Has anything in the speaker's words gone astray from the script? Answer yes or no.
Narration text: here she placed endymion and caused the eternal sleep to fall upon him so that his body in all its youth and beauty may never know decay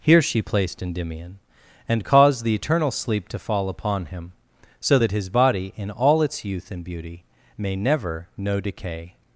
no